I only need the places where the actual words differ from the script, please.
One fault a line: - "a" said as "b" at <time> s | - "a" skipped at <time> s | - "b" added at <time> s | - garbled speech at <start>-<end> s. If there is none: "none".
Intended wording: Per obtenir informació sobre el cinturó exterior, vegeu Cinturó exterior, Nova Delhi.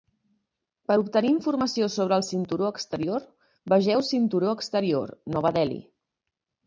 none